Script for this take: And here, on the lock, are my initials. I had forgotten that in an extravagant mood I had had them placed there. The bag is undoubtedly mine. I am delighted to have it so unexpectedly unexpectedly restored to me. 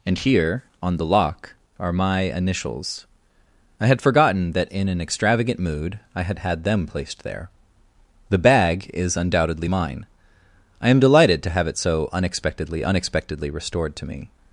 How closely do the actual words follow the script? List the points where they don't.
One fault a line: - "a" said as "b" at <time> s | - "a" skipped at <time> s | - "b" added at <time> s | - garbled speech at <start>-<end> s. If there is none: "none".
none